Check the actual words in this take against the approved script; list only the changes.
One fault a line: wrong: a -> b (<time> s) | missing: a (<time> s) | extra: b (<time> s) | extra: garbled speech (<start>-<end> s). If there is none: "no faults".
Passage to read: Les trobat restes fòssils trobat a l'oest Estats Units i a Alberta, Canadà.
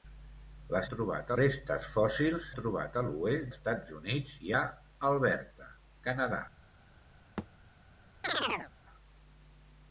no faults